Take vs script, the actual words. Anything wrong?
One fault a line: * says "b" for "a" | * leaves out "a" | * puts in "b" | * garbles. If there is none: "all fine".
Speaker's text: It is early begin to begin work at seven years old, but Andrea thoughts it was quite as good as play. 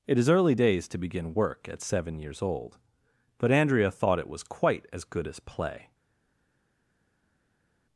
* says "days" for "begin"
* says "thought" for "thoughts"